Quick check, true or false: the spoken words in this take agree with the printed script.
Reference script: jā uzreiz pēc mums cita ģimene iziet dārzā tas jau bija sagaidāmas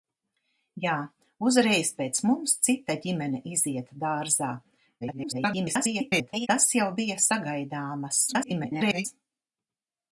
false